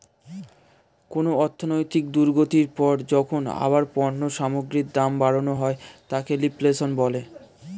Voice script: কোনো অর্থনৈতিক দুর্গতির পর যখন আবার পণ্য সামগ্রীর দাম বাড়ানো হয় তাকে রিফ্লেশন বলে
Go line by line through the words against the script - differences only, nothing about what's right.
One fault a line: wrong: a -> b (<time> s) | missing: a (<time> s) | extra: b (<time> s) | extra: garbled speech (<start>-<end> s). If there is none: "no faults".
no faults